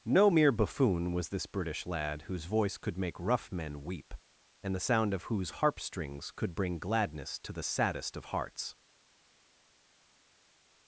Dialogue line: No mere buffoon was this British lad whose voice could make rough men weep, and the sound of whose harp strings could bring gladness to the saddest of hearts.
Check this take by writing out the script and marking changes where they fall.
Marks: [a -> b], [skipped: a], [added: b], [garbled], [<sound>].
No mere buffoon was this British lad whose voice could make rough men weep, and the sound of whose harp strings could bring gladness to the saddest of hearts.